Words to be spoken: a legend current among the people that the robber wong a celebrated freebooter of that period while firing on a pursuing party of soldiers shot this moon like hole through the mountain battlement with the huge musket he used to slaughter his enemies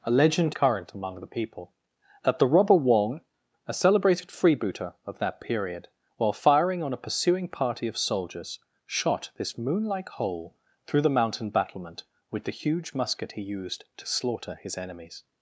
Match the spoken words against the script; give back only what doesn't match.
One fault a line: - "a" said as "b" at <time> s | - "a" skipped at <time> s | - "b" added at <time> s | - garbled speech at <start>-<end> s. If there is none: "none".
none